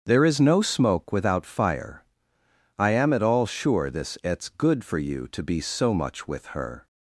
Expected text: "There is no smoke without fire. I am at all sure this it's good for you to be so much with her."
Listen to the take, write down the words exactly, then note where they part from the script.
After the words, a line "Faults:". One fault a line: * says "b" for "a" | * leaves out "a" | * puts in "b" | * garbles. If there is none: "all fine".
"There is no smoke without fire. I am at all sure this it's good for you to be so much with her."
Faults:
all fine